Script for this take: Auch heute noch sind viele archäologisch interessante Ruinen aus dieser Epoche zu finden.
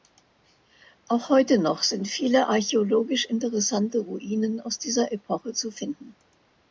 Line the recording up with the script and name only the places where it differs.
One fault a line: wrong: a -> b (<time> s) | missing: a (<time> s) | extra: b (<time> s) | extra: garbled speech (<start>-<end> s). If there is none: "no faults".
no faults